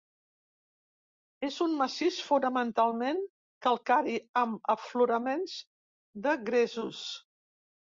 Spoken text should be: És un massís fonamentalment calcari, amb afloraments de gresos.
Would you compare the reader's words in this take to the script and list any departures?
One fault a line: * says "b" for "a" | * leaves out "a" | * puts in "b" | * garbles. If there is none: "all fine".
all fine